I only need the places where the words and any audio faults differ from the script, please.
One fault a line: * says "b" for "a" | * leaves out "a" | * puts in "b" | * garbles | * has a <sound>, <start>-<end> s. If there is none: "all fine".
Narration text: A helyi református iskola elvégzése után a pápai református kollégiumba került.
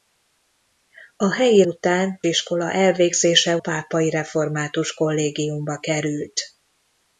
* says "után" for "református"
* leaves out "után a"